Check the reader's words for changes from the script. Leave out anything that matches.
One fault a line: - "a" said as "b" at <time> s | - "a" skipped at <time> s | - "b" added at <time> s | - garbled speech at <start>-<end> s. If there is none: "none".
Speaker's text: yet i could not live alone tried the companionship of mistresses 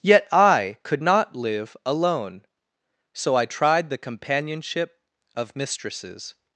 - "so i" added at 3.1 s